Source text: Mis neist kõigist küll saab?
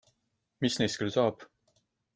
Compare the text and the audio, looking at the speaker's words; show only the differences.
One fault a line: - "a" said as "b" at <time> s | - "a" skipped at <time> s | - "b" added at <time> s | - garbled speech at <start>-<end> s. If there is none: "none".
- "kõigist" skipped at 1.0 s